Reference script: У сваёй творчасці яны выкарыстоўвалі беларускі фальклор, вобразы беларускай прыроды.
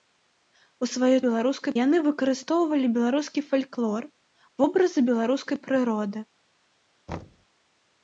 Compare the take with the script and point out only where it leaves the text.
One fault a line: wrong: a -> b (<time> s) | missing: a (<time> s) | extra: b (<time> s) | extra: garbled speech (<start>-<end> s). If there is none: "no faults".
wrong: творчасці -> беларускай (1.3 s)